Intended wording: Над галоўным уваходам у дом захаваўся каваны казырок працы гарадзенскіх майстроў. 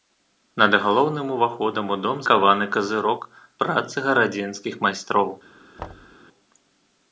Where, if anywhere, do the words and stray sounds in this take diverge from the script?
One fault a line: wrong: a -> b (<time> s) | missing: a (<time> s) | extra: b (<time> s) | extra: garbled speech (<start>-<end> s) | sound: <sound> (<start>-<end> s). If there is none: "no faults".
missing: захаваўся (2.2 s)
sound: thud (5.8-6.2 s)